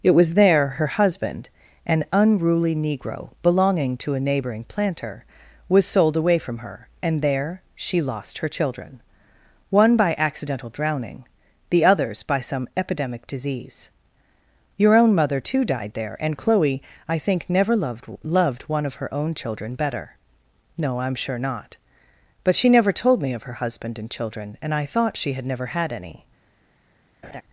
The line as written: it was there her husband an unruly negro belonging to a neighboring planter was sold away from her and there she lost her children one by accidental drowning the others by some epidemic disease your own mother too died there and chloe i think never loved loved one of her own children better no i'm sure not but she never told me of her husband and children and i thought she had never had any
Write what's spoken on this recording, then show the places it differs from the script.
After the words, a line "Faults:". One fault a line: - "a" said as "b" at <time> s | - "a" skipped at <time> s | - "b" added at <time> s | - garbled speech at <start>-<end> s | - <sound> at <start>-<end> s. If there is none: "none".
it was there her husband an unruly negro belonging to a neighboring planter was sold away from her and there she lost her children one by accidental drowning the others by some epidemic disease your own mother too died there and chloe i think never loved loved one of her own children better no i'm sure not but she never told me of her husband and children and i thought she had never had any
Faults:
- laugh at 27.2-27.4 s